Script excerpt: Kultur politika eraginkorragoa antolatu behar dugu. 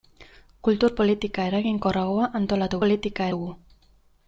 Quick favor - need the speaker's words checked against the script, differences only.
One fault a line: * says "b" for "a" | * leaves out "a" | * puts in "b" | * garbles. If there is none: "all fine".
* says "politika" for "behar"